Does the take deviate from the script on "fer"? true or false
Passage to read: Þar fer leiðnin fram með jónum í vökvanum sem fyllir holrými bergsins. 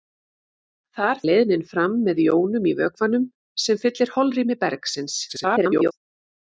true